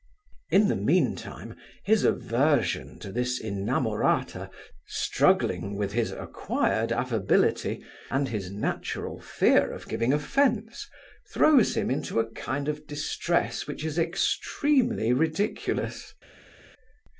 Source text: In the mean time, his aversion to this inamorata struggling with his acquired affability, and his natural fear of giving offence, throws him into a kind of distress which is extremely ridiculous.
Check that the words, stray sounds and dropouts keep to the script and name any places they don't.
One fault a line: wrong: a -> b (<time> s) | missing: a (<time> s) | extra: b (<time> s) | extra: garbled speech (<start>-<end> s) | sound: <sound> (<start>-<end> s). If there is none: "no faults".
no faults